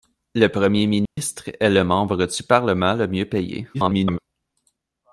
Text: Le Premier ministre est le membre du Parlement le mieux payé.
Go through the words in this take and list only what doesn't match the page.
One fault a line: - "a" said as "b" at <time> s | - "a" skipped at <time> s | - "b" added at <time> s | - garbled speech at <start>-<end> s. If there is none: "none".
- garbled speech at 3.7-4.2 s